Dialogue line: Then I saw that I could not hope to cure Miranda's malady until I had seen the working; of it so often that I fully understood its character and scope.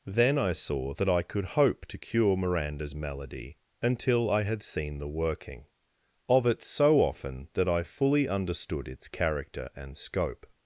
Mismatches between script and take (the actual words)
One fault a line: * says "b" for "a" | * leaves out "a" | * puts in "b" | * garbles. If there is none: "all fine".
* leaves out "not"